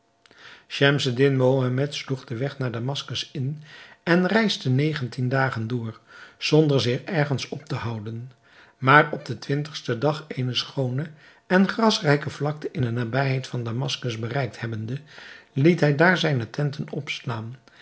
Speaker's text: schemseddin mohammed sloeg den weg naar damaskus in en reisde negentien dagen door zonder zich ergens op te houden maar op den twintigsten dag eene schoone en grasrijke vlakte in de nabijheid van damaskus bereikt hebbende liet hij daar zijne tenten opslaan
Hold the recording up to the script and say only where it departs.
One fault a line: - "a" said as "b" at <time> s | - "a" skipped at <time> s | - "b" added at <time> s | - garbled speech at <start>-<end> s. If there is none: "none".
none